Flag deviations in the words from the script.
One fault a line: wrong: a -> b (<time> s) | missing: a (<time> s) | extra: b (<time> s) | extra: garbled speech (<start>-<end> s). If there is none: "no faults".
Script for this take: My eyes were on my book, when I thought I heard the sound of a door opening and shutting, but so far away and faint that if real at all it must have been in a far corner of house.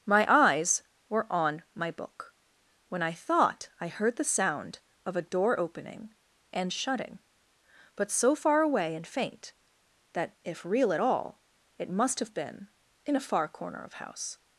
no faults